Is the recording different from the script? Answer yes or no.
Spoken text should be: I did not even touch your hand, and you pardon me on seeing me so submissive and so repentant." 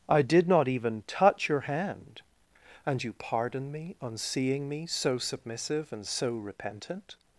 no